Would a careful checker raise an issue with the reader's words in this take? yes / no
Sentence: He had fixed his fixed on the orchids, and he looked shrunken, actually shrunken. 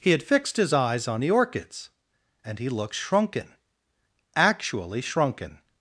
yes